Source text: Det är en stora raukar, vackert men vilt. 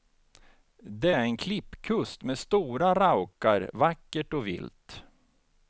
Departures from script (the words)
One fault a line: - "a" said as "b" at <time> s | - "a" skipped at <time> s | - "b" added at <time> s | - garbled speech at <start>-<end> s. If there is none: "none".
- "klippkust med" added at 1.4 s
- "men" said as "och" at 4.3 s